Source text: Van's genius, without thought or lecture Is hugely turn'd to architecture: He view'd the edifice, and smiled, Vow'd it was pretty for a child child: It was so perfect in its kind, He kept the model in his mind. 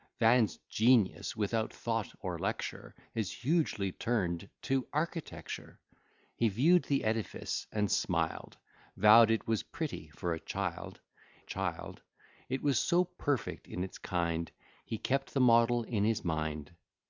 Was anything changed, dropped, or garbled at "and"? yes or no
no